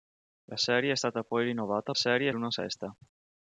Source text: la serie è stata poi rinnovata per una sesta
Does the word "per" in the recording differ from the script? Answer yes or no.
yes